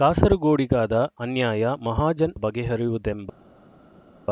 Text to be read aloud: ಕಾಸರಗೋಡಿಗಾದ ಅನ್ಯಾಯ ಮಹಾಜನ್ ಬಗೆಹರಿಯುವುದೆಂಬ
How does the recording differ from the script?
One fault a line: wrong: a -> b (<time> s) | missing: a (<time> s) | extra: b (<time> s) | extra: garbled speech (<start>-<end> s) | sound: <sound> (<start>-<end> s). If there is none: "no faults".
no faults